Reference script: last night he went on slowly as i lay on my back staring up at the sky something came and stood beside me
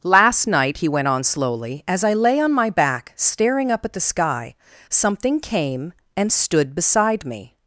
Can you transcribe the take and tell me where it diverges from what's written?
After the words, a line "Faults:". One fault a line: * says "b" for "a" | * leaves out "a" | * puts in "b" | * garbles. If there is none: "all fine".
last night he went on slowly as i lay on my back staring up at the sky something came and stood beside me
Faults:
all fine